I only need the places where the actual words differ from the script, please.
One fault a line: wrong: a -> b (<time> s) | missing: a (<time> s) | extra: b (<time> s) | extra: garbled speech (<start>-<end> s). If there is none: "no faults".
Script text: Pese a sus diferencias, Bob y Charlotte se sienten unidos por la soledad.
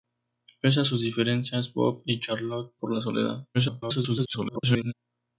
missing: se sienten unidos (2.7 s)
extra: garbled speech (3.5-4.9 s)